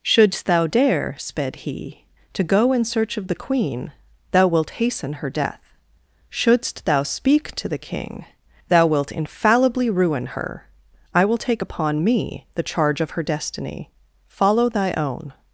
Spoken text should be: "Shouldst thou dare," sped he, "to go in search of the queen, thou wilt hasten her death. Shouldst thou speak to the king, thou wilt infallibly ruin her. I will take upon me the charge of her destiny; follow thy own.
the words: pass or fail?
pass